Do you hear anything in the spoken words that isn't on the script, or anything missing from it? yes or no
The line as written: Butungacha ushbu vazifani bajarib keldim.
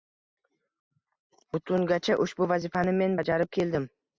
yes